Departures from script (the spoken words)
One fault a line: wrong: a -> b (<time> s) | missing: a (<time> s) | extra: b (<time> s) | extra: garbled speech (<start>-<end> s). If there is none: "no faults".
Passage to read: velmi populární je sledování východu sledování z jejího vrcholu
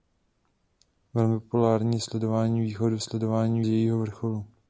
no faults